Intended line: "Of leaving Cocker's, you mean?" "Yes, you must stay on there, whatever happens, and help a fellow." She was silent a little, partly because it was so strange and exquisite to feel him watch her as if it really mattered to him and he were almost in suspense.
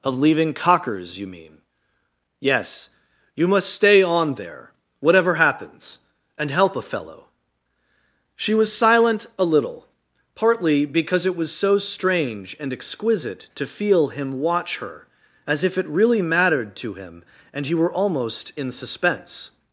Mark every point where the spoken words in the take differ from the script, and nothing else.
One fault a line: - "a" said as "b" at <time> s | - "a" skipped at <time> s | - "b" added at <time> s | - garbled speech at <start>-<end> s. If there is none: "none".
none